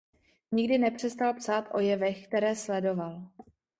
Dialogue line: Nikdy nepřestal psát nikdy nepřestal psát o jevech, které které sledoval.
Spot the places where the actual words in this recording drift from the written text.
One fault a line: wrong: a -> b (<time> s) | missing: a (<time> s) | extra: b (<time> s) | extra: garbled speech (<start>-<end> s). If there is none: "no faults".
missing: nikdy nepřestal psát (1.6 s)
missing: které (2.5 s)